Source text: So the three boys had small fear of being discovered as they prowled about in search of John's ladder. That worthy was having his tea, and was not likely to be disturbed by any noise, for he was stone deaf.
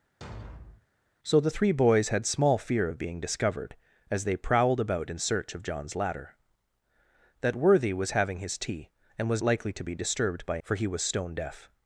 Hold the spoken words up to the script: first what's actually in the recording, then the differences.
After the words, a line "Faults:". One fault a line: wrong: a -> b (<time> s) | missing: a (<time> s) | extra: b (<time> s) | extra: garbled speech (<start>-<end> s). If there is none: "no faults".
So the three boys had small fear of being discovered as they prowled about in search of John's ladder. That worthy was having his tea, and was likely to be disturbed by for he was stone deaf.
Faults:
missing: not (9.4 s)
missing: any noise (10.6 s)